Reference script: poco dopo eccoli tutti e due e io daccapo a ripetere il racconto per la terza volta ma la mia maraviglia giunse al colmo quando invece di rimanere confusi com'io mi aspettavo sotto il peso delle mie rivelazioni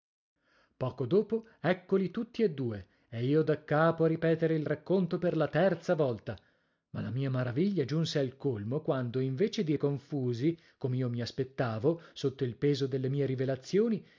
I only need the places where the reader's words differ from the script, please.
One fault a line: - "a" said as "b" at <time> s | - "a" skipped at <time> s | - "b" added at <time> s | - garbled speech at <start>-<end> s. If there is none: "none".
- "rimanere" skipped at 9.7 s